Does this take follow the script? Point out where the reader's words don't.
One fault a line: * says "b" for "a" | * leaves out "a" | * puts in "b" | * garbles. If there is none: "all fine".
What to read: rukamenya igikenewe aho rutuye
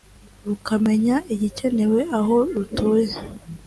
all fine